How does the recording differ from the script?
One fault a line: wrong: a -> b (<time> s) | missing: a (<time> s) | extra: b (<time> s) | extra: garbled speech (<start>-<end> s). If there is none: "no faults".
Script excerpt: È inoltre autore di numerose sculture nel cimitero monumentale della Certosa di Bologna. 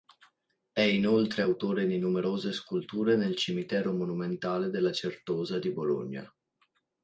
no faults